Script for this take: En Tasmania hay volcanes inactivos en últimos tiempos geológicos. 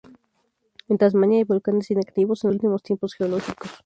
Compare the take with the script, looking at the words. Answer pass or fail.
pass